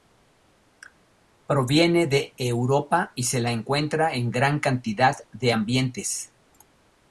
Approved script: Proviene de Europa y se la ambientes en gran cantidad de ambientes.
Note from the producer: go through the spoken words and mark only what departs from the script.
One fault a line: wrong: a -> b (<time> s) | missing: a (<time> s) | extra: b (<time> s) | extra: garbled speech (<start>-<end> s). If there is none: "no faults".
wrong: ambientes -> encuentra (3.5 s)